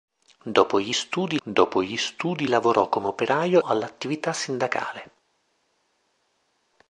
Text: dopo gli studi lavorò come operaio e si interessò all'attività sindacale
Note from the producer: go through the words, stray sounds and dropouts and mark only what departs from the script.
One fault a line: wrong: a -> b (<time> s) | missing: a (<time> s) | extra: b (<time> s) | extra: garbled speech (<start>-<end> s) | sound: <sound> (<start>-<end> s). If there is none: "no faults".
extra: dopo gli studi (1.4 s)
missing: e si interessò (3.6 s)